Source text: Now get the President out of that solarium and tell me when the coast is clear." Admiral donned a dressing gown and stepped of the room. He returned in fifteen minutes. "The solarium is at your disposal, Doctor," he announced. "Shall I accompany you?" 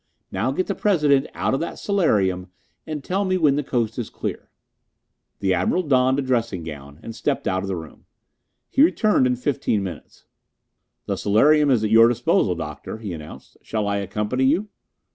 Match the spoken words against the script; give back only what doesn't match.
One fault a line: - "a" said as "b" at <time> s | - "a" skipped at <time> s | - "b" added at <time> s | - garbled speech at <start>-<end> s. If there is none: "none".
- "The" added at 5.4 s
- "out" added at 7.5 s